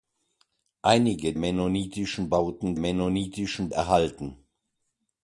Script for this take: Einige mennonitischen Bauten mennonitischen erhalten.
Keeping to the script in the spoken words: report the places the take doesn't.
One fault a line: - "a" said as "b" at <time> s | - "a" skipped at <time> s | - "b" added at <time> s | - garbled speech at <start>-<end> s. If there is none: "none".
none